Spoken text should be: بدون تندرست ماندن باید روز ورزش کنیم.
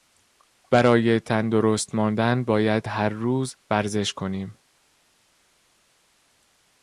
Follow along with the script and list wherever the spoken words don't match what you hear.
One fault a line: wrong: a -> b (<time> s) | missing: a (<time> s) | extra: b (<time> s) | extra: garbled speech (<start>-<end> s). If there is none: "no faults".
wrong: بدون -> برای (0.7 s)
extra: هر (2.9 s)